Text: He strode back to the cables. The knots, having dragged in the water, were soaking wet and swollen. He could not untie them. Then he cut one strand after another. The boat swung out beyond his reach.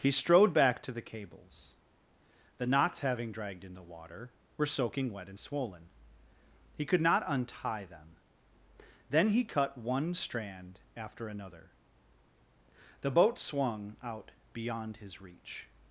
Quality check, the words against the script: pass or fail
pass